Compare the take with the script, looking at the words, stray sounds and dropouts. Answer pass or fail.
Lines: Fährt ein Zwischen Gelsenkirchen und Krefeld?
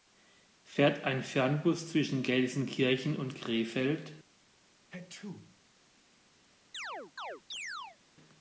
fail